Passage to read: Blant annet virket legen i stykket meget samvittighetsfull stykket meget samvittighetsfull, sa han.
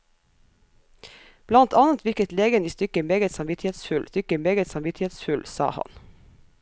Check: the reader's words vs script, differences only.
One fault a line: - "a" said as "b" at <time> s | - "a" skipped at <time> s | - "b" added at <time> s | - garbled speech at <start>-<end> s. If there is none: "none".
none